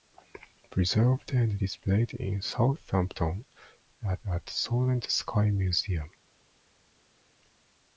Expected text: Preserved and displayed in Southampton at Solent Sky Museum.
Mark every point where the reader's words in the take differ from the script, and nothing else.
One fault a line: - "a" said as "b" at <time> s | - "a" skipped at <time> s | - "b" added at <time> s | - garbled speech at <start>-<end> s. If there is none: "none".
- "at" added at 4.3 s